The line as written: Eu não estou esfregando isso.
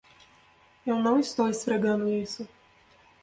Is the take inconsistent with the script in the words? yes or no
no